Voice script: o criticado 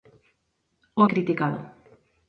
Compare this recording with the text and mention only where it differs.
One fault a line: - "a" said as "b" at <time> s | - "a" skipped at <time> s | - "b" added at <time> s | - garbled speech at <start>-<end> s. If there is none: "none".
none